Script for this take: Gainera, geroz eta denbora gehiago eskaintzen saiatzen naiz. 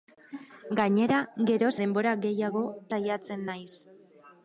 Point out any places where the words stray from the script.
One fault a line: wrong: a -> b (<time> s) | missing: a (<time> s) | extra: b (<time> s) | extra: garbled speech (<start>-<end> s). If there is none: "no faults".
missing: eta (1.7 s)
missing: eskaintzen (2.6 s)